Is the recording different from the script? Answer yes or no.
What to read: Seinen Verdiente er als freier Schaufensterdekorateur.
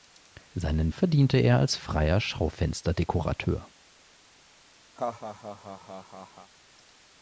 no